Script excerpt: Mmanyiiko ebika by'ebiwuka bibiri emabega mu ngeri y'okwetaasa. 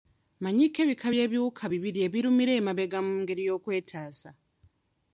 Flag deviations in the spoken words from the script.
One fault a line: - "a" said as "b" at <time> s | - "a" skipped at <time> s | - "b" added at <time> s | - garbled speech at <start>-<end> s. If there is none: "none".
- "ebirumira" added at 2.1 s